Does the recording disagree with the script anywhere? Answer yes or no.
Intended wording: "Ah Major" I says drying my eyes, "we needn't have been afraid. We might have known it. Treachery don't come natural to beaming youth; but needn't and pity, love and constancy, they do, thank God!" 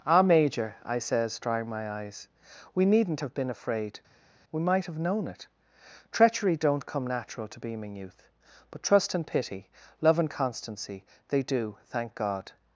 yes